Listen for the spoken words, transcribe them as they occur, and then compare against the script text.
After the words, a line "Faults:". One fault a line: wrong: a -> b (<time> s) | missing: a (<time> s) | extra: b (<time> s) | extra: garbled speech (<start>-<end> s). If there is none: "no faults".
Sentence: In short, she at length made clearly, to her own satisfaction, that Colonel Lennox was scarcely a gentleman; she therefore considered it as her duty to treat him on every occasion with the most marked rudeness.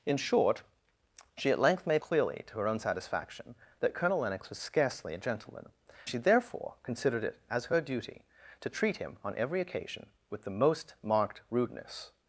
In short, she at length made clearly, to her own satisfaction, that Colonel Lennox was scarcely a gentleman; she therefore considered it as her duty to treat him on every occasion with the most marked rudeness.
Faults:
no faults